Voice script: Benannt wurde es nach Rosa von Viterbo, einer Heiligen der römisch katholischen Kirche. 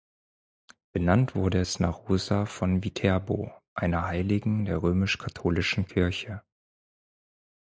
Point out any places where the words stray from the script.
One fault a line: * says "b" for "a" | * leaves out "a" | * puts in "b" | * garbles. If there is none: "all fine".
all fine